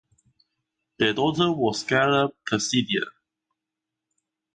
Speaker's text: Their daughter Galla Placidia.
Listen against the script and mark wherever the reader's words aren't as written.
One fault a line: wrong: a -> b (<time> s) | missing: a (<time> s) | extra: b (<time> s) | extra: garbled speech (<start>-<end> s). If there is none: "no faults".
extra: was (1.5 s)